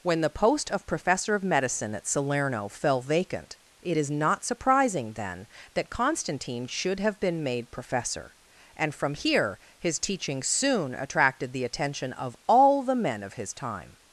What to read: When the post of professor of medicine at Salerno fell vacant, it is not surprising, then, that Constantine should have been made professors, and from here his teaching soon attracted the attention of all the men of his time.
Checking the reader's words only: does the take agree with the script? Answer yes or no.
no